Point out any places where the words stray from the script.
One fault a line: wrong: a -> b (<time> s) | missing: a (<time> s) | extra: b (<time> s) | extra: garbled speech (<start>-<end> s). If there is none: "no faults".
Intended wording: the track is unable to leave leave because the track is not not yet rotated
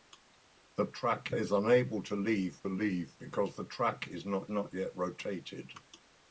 no faults